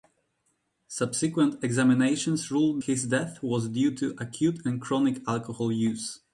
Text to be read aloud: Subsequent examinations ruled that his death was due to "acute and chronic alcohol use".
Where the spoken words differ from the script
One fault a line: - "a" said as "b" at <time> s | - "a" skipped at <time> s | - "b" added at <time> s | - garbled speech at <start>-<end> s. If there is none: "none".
- "that" skipped at 2.8 s